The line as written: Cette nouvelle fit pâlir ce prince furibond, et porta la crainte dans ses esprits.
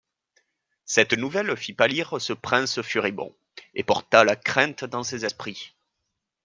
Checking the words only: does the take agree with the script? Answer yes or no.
yes